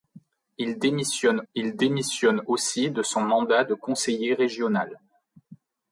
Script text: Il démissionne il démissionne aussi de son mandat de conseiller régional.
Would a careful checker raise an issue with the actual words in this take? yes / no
no